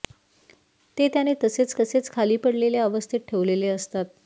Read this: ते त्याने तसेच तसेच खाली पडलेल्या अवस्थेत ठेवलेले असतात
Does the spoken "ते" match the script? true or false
true